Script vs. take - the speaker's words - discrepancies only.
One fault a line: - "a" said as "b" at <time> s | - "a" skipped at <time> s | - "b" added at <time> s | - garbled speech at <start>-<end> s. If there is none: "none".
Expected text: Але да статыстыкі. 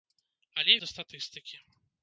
none